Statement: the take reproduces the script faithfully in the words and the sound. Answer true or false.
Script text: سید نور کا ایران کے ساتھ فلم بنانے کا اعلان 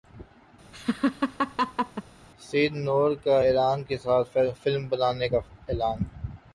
false